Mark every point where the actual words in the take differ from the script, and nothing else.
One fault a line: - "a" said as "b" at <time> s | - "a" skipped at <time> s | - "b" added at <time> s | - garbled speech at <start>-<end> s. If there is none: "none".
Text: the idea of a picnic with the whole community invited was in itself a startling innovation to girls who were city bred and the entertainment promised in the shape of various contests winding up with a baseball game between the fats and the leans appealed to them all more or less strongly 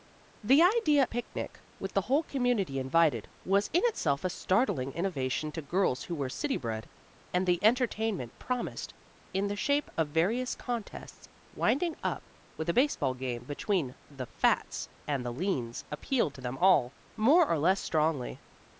- "of" skipped at 1.0 s